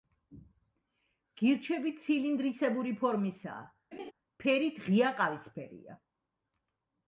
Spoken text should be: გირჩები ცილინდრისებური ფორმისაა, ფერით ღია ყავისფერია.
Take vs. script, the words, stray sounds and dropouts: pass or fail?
fail